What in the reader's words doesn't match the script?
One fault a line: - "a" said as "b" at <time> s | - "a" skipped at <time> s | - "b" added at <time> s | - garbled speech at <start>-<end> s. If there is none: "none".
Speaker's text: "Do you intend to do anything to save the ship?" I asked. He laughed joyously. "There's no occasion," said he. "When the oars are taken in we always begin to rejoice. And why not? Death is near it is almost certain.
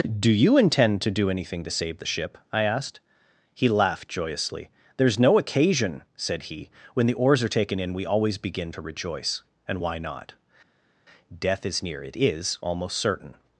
none